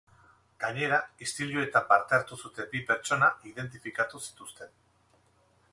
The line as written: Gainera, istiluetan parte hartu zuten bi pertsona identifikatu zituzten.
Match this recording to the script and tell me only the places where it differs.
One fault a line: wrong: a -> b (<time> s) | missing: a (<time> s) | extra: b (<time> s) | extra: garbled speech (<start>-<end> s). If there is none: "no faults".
no faults